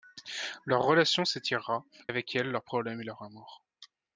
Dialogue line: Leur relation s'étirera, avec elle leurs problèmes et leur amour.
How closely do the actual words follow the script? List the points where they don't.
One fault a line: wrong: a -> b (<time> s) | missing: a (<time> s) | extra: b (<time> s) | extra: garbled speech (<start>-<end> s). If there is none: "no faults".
no faults